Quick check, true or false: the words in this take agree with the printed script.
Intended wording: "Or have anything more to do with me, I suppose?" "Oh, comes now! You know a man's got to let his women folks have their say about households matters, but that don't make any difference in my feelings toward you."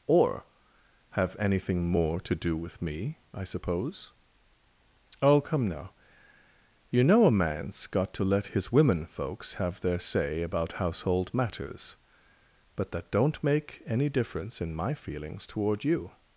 false